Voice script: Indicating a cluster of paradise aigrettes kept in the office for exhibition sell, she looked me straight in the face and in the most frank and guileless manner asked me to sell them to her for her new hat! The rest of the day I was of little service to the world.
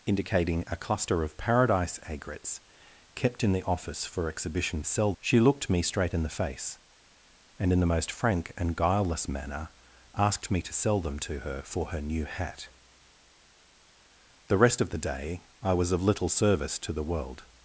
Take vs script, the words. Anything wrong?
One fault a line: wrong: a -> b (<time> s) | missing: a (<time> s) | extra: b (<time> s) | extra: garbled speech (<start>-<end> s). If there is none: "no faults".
no faults